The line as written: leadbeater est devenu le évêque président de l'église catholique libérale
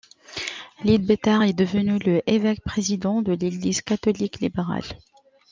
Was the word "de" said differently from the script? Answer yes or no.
no